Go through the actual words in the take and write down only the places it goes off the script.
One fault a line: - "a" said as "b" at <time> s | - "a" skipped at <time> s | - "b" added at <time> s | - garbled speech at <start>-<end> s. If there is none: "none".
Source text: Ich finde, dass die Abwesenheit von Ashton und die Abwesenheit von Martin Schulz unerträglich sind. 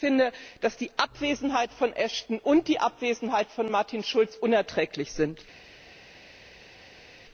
none